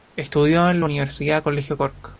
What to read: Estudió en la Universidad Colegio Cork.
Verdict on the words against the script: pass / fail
pass